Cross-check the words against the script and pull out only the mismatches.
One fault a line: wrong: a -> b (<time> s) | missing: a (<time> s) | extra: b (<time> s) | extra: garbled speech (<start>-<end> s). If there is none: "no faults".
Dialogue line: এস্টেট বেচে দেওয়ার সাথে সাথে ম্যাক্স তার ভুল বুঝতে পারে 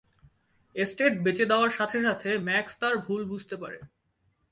no faults